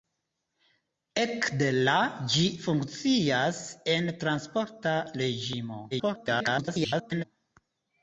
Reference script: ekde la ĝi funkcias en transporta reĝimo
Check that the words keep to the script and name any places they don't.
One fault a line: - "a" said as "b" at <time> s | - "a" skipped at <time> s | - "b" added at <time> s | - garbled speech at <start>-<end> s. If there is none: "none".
- garbled speech at 5.9-7.2 s